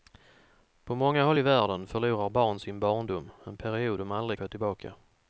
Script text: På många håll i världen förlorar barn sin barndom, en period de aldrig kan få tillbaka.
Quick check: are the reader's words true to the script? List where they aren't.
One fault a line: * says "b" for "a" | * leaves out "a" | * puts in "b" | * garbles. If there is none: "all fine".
* leaves out "kan"